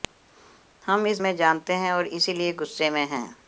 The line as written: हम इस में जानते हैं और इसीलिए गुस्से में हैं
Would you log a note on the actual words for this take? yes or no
no